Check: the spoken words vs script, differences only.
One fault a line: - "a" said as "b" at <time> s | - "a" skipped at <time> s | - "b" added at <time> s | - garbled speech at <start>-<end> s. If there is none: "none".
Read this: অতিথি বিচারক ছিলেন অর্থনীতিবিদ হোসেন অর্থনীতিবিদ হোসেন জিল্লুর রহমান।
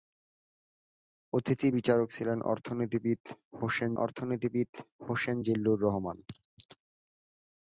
none